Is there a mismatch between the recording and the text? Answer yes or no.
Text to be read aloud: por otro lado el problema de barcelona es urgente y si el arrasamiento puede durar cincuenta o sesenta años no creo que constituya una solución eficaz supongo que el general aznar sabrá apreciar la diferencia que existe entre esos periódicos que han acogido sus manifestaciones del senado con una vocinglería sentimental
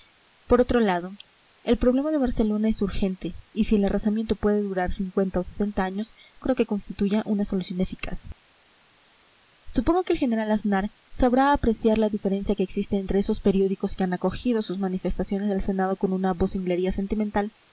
yes